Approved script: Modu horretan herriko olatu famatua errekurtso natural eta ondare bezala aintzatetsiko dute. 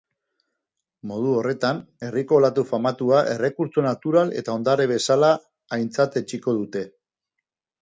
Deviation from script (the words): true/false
false